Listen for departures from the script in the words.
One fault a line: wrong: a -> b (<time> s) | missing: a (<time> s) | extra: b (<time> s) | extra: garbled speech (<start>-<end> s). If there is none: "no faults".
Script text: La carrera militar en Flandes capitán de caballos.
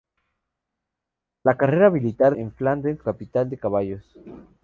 no faults